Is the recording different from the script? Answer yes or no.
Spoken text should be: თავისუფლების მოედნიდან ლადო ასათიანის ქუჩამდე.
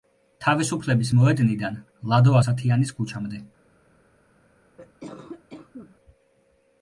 no